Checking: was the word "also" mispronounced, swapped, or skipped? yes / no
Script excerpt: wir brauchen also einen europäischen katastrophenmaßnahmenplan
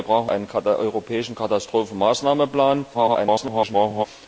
yes